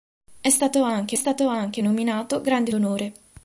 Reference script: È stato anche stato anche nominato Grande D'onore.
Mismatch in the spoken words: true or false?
false